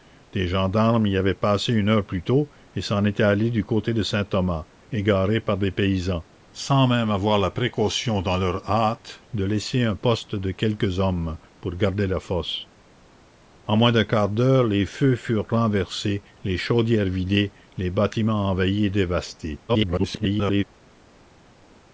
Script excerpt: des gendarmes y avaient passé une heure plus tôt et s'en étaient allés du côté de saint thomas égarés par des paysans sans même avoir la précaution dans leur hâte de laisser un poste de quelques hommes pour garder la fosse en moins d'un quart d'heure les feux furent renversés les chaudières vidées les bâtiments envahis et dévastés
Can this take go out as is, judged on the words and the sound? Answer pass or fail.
fail